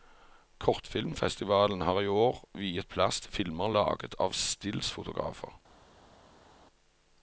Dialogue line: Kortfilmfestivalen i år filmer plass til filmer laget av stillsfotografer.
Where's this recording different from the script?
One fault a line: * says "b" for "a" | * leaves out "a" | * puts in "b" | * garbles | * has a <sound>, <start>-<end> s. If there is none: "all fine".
* puts in "har"
* says "viet" for "filmer"